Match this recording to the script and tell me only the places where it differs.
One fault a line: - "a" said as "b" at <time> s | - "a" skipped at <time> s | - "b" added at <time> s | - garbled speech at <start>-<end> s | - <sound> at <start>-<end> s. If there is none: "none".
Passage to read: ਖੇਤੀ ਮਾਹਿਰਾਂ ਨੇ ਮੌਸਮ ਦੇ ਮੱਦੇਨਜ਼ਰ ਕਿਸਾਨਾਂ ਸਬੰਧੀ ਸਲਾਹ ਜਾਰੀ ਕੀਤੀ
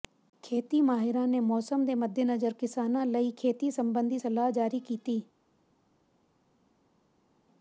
- "ਲਈ ਖੇਤੀ" added at 3.0 s